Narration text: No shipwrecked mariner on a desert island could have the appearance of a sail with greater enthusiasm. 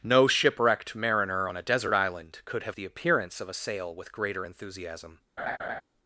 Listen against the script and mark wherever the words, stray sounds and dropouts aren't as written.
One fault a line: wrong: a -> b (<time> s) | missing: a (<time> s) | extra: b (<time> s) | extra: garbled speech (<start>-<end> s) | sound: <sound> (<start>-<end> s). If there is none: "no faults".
sound: laugh (5.4-5.8 s)